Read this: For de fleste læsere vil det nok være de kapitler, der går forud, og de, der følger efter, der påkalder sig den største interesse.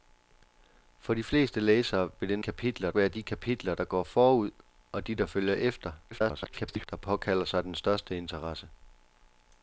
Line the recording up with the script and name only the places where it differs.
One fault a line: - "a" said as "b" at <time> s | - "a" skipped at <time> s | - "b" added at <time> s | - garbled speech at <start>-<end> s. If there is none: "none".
- "nok" said as "kapitler" at 2.4 s
- garbled speech at 6.1-6.9 s